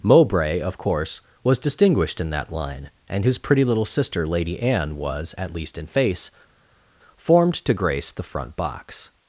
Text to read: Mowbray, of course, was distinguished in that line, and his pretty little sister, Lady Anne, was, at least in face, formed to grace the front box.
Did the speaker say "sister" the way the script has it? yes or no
yes